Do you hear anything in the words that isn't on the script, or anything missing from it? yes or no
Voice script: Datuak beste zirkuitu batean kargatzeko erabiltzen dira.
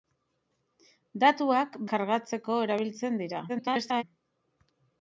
yes